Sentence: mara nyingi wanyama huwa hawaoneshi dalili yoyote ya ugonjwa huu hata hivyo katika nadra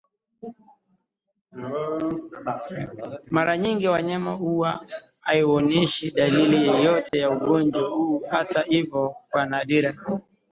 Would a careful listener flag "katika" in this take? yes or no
yes